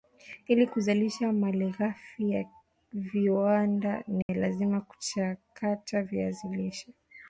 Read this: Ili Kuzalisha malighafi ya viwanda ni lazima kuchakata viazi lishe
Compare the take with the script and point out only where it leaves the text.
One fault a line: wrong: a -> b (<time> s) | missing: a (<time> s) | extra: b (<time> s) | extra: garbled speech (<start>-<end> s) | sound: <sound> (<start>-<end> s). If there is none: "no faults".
sound: dropout (4.2-4.3 s)